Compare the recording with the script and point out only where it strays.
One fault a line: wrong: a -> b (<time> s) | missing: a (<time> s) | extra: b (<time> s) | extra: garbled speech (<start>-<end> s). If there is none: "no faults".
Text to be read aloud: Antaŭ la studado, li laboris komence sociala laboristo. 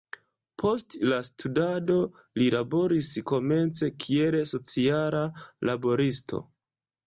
wrong: Antaŭ -> Post (0.6 s)
extra: kiel (4.1 s)